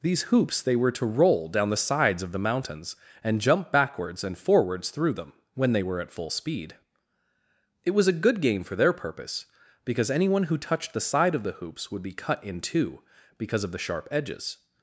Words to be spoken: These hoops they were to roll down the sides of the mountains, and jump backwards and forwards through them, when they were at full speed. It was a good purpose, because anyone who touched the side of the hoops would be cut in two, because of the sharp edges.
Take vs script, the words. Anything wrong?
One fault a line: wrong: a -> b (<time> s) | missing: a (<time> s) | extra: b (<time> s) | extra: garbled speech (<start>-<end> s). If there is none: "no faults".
extra: game for their (8.4 s)